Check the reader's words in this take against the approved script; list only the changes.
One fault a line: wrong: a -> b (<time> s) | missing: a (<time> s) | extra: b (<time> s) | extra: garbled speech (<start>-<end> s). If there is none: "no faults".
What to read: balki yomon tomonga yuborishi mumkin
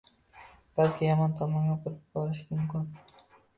extra: burib (1.9 s)